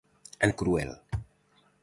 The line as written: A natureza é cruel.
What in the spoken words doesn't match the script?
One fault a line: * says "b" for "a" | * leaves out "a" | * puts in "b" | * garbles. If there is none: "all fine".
* leaves out "natureza"